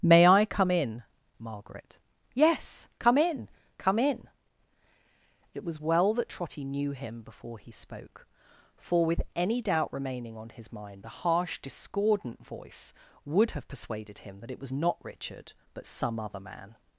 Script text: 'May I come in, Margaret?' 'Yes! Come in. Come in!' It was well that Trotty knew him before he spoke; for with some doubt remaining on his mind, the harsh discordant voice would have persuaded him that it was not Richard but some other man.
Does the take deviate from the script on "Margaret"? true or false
false